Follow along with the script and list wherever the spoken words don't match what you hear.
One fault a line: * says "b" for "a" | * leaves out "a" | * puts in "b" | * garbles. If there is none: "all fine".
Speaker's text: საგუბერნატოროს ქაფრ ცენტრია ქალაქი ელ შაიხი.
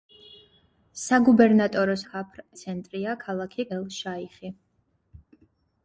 all fine